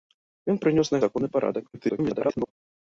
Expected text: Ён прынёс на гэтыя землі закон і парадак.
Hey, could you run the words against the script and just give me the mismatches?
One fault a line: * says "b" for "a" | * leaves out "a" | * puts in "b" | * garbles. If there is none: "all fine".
* leaves out "гэтыя землі"
* garbles